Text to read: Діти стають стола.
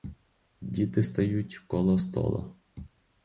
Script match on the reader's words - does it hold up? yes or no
no